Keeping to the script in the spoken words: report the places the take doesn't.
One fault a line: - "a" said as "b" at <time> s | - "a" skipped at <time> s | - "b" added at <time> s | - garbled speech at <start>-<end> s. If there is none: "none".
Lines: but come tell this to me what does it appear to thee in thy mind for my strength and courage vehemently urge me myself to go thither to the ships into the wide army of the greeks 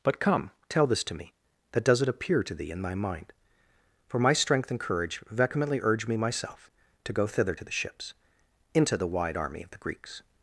- "what" said as "that" at 1.7 s